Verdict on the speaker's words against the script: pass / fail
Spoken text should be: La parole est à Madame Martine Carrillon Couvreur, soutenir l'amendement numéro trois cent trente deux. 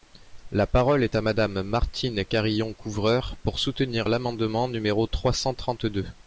fail